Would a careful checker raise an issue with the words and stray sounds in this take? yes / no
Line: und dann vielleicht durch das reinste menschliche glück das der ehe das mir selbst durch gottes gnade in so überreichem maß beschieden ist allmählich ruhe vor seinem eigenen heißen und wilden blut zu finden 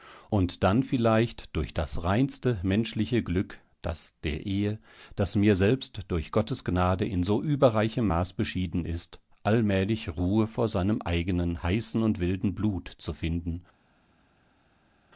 no